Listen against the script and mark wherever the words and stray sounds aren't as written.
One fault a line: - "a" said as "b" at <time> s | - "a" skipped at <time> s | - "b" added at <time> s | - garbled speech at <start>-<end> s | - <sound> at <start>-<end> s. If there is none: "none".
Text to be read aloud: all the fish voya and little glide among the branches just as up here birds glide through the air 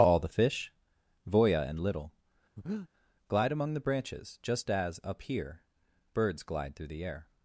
- breath at 2.6-2.9 s